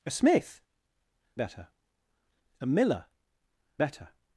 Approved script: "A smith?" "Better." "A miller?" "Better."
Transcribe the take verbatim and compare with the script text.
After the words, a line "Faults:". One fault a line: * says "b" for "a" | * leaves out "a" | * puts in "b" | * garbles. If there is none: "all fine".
"A smith?" "Better." "A miller?" "Better."
Faults:
all fine